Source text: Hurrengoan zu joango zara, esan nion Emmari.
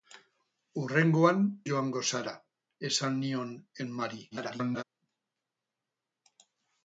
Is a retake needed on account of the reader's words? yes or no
yes